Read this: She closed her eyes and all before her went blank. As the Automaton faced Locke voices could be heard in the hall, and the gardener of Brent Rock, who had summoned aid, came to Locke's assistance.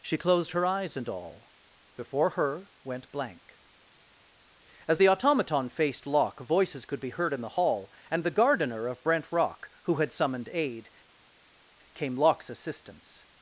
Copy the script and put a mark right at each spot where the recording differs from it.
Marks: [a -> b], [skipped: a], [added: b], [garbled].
She closed her eyes and all before her went blank. As the Automaton faced Locke voices could be heard in the hall, and the gardener of Brent Rock, who had summoned aid, came [skipped: to] Locke's assistance.